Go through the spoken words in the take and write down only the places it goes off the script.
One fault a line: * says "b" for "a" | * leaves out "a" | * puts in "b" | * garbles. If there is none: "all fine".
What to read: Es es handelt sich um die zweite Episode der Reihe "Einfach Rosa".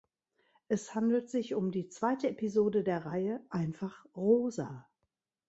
* leaves out "es"